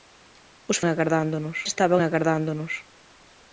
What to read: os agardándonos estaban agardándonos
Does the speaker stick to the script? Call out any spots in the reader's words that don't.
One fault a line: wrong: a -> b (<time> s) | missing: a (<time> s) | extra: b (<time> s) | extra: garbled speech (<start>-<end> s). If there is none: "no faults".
no faults